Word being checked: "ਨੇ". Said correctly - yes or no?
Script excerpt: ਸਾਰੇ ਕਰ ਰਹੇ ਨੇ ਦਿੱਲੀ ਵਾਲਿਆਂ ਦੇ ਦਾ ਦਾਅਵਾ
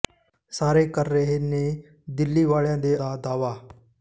yes